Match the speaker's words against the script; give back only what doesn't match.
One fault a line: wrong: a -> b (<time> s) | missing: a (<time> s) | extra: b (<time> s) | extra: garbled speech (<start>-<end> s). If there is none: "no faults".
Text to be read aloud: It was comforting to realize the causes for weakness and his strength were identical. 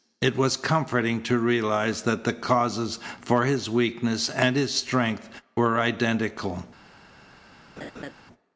extra: that (2.0 s)
extra: his (3.5 s)